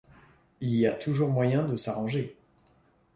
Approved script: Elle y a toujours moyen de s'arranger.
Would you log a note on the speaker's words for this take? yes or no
yes